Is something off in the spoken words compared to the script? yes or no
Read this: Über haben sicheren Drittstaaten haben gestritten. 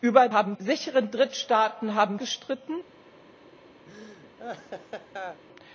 no